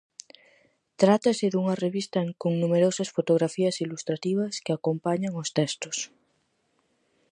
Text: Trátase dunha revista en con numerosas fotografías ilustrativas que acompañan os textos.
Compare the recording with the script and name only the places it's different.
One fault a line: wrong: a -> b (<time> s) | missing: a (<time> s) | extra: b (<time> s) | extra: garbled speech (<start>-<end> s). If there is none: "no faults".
no faults